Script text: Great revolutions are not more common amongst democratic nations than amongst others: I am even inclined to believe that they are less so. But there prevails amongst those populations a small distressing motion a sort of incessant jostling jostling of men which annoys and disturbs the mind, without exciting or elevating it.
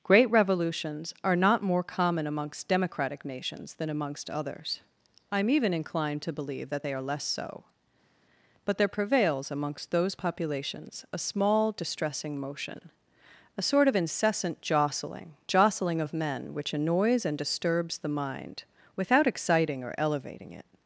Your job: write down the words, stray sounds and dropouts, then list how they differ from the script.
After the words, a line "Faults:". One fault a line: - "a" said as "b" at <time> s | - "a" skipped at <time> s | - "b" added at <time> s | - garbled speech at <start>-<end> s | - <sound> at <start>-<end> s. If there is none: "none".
Great revolutions are not more common amongst democratic nations than amongst others: I am even inclined to believe that they are less so. But there prevails amongst those populations a small distressing motion a sort of incessant jostling jostling of men which annoys and disturbs the mind, without exciting or elevating it.
Faults:
none